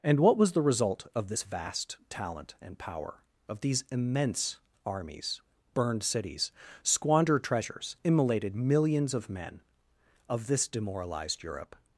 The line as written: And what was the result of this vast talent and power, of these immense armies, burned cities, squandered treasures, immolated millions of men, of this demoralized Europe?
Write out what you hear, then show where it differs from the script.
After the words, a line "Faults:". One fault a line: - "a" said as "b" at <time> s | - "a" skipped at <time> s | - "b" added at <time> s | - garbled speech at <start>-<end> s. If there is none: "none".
And what was the result of this vast talent and power, of these immense armies, burned cities, squandered treasures, immolated millions of men, of this demoralized Europe?
Faults:
none